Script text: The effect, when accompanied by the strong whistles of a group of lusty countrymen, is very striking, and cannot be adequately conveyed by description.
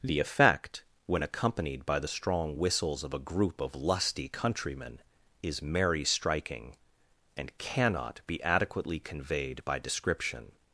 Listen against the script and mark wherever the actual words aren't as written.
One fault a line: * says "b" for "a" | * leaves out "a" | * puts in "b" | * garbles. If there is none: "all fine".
* says "merry" for "very"